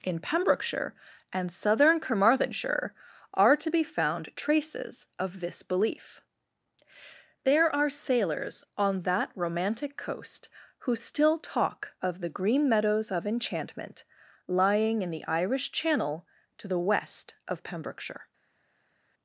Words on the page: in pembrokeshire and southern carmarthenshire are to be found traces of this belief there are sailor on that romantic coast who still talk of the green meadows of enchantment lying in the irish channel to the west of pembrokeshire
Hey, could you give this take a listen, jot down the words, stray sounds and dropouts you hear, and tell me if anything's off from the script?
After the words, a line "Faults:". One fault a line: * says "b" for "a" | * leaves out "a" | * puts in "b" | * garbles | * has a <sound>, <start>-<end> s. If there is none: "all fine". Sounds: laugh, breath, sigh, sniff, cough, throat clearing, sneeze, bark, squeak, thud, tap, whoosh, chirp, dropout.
in pembrokeshire and southern carmarthenshire are to be found traces of this belief there are sailors on that romantic coast who still talk of the green meadows of enchantment lying in the irish channel to the west of pembrokeshire
Faults:
* says "sailors" for "sailor"